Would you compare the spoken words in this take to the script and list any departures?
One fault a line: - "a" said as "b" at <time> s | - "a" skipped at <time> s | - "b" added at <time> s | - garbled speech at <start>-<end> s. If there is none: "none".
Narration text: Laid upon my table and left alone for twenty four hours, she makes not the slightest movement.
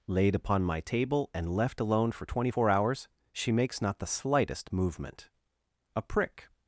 - "A prick" added at 6.0 s